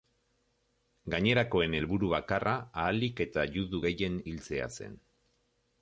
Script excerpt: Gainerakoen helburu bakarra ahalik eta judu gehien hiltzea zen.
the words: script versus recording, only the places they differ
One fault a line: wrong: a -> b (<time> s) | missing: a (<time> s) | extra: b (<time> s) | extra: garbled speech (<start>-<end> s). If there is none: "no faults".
no faults